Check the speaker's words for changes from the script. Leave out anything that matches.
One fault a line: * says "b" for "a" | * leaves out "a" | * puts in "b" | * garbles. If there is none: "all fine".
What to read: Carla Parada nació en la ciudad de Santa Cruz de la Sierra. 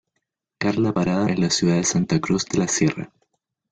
* leaves out "nació"